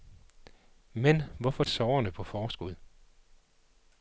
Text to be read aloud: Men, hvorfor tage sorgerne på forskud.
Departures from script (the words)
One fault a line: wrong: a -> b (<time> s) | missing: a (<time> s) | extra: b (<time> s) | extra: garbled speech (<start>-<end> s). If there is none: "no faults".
missing: tage (1.6 s)